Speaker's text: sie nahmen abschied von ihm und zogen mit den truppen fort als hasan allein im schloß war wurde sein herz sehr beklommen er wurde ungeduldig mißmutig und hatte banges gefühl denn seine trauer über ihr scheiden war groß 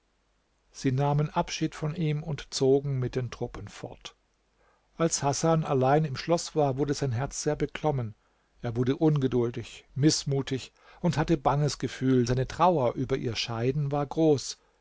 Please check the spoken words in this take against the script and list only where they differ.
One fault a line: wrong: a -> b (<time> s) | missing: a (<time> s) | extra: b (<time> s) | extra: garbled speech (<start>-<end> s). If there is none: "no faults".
missing: denn (12.2 s)